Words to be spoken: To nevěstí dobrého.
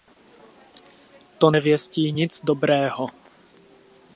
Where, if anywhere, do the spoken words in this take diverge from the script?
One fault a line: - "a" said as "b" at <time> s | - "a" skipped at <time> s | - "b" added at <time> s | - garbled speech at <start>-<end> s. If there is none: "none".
- "nic" added at 2.1 s